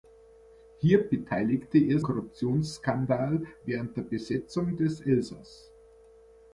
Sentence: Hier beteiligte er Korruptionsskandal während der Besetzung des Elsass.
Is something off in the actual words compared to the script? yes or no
no